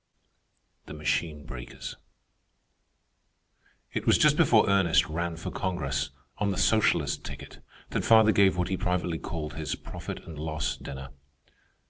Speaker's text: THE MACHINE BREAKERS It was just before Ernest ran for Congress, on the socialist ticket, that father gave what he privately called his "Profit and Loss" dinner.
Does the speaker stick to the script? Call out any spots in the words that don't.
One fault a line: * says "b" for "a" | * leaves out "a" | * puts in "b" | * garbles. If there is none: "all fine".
all fine